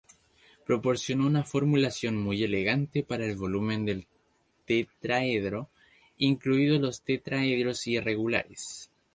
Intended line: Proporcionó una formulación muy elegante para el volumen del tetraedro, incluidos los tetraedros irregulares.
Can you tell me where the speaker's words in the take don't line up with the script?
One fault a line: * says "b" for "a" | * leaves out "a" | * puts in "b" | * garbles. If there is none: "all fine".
all fine